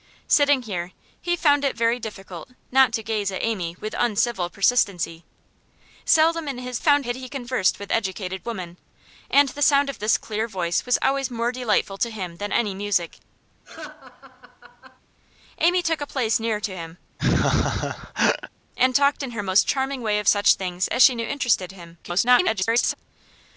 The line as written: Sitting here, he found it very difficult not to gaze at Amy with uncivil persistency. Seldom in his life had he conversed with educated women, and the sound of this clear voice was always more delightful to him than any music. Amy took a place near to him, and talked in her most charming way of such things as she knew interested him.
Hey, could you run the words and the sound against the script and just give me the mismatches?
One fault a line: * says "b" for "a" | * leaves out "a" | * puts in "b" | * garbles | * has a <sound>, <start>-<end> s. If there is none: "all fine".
* says "found" for "life"
* has a laugh, 13.6-15.0 s
* has a laugh, 17.2-18.5 s
* garbles